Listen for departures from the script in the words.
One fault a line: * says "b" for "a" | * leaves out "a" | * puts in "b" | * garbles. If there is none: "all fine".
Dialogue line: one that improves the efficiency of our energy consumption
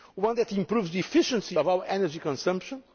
all fine